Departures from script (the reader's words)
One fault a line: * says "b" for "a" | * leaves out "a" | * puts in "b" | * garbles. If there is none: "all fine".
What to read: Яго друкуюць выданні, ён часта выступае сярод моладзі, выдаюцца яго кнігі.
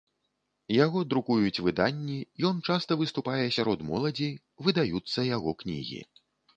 all fine